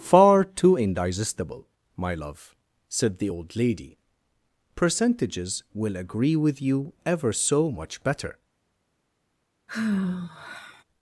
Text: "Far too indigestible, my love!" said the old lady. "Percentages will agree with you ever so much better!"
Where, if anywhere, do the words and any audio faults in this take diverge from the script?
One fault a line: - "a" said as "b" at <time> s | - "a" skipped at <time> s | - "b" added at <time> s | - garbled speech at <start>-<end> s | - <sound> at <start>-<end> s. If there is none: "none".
- sigh at 9.7-10.8 s